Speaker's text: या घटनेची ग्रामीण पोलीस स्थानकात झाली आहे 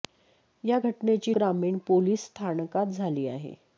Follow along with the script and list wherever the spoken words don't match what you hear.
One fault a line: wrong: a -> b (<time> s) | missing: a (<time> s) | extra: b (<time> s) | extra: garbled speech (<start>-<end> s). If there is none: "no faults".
no faults